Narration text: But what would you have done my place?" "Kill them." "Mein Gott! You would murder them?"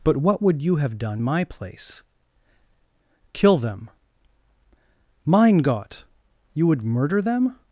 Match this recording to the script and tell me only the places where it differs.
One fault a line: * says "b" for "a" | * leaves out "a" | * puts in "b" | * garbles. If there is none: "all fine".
all fine